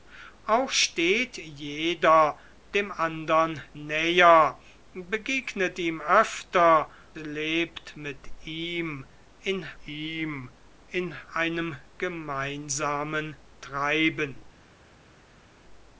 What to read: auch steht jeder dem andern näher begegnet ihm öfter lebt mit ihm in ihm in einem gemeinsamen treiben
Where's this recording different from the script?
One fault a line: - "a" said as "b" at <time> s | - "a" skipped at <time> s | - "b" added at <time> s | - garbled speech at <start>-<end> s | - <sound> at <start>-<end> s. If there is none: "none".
none